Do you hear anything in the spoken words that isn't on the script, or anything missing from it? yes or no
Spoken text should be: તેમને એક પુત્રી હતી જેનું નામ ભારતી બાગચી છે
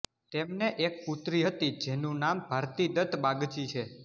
yes